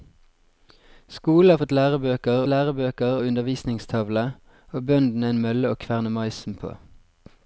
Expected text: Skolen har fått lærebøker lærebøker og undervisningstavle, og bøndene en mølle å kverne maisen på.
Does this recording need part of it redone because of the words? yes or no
no